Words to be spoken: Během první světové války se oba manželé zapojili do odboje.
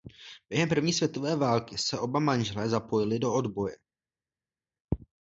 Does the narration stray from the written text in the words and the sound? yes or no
no